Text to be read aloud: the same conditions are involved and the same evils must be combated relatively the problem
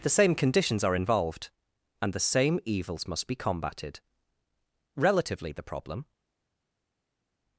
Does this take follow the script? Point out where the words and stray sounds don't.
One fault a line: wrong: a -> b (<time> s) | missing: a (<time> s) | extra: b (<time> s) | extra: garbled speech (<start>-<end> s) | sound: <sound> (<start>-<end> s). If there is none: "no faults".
no faults